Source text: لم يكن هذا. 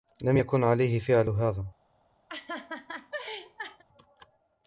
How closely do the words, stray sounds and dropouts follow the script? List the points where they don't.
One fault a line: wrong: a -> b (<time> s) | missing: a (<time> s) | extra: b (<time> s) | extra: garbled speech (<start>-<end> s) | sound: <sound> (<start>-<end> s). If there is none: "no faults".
extra: عليه فعل (0.6 s)
sound: laugh (2.3-3.8 s)